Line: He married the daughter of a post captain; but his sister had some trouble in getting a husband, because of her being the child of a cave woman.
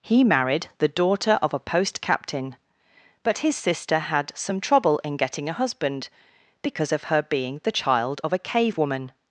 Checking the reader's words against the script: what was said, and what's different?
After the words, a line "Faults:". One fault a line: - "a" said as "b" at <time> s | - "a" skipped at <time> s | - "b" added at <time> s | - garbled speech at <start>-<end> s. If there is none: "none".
He married the daughter of a post captain; but his sister had some trouble in getting a husband, because of her being the child of a cave woman.
Faults:
none